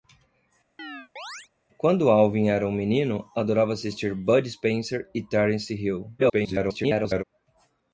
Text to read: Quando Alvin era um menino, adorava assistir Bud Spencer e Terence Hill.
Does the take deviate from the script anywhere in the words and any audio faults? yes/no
yes